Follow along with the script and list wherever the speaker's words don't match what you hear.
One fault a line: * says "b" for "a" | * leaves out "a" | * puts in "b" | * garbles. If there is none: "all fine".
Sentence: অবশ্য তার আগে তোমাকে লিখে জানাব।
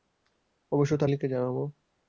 * leaves out "আগে তোমাকে"